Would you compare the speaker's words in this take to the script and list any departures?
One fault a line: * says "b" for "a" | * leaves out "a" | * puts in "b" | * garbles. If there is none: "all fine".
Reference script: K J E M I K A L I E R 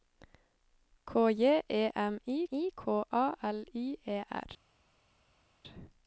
* puts in "I"